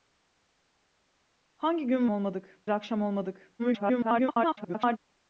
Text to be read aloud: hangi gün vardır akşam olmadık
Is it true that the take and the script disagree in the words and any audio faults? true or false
true